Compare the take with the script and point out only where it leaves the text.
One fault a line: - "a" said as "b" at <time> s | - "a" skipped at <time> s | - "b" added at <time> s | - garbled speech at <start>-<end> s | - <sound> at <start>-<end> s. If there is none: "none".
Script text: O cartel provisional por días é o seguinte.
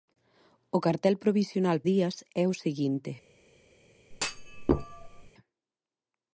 - "por" skipped at 1.8 s
- thud at 4.1-5.3 s